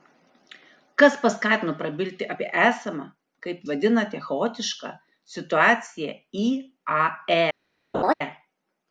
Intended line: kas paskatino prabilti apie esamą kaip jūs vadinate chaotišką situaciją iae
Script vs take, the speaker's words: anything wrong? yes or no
yes